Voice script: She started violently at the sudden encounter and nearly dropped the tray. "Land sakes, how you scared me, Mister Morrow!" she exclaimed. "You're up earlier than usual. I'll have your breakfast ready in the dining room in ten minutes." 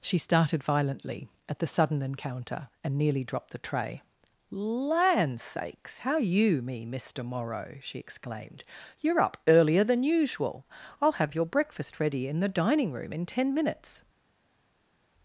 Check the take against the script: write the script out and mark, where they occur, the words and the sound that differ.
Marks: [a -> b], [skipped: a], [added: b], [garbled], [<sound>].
She started violently at the sudden encounter and nearly dropped the tray. "Land sakes, how you [skipped: scared] me, Mister Morrow!" she exclaimed. "You're up earlier than usual. I'll have your breakfast ready in the dining room in ten minutes."